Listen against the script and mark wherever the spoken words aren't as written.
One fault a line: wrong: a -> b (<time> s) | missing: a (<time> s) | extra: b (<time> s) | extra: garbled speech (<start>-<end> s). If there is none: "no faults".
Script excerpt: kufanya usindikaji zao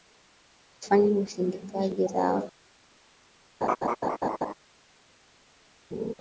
no faults